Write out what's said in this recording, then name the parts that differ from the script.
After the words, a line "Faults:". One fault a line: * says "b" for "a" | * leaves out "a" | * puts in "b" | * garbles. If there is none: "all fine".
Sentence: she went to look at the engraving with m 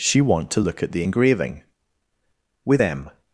she want to look at the engraving with m
Faults:
* says "want" for "went"